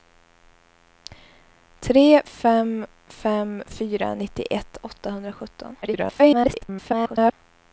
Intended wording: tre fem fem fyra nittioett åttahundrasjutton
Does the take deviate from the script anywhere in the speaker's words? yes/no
yes